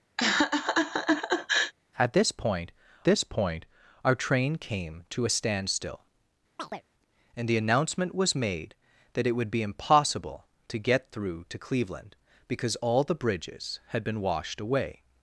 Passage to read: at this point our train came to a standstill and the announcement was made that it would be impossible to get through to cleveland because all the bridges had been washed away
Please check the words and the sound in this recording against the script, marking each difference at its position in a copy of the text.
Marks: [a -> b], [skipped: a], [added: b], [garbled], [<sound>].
[laugh] at this point [added: this point] our train came to a standstill [chirp] and the announcement was made that it would be impossible to get through to cleveland because all the bridges had been washed away